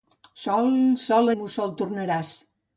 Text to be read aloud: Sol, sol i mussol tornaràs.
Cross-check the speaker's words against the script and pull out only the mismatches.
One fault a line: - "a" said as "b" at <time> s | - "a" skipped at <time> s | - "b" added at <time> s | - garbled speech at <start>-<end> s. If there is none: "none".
none